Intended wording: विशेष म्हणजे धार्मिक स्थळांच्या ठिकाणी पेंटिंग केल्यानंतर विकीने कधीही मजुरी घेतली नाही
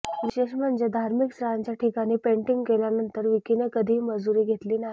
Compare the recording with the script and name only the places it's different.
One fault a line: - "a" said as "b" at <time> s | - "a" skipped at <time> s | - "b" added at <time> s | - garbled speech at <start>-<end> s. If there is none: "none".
none